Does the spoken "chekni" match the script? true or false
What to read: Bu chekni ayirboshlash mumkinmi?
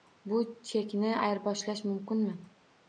true